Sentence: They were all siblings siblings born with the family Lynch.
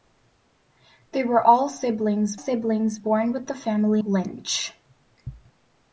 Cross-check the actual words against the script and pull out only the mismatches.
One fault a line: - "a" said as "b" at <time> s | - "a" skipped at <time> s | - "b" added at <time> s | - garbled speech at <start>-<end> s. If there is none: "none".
none